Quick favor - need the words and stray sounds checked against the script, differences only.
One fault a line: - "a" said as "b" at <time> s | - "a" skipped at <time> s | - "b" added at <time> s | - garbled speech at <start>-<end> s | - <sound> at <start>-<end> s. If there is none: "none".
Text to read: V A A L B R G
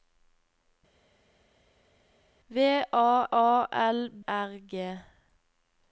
none